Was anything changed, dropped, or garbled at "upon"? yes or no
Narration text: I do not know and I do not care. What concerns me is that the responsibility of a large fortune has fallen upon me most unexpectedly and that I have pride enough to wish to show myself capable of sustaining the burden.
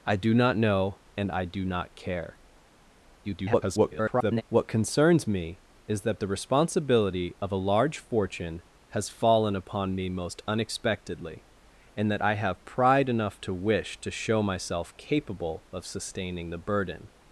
no